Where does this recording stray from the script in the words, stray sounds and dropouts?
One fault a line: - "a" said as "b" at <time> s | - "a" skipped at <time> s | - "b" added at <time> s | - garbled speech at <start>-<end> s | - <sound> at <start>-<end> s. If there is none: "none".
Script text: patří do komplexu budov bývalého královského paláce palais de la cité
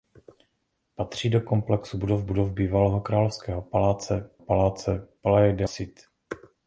- "budov" added at 2.2 s
- "paláce" added at 4.4 s
- "la" skipped at 5.7 s